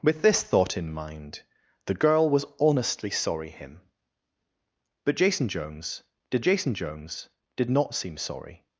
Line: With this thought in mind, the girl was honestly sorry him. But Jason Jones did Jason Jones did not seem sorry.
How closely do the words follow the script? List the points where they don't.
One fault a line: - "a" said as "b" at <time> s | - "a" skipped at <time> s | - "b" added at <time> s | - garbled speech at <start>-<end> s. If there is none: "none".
none